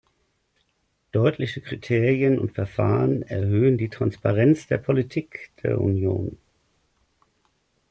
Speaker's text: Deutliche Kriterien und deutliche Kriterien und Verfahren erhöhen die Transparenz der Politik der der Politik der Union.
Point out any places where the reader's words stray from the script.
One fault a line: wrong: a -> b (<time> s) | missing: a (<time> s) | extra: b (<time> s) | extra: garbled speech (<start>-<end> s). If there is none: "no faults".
missing: deutliche Kriterien und (2.5 s)
missing: der Politik der (5.8 s)